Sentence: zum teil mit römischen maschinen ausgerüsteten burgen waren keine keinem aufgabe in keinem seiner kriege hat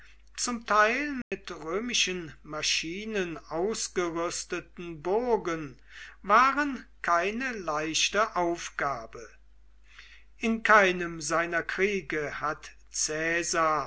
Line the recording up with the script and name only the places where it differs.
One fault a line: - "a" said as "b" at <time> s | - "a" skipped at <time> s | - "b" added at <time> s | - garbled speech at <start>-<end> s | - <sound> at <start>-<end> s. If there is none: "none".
- dropout at 1.2-1.3 s
- "keinem" said as "leichte" at 7.5 s